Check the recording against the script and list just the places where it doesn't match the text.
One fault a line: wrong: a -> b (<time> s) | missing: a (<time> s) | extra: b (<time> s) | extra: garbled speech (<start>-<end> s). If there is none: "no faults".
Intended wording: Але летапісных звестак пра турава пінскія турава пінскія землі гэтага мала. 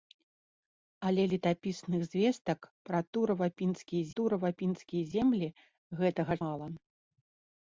no faults